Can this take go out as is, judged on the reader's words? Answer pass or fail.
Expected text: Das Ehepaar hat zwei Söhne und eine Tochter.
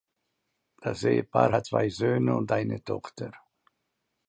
pass